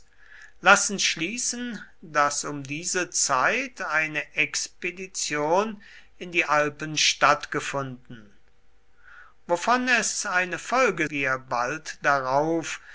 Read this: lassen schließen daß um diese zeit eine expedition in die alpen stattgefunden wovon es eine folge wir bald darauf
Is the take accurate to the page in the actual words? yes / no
yes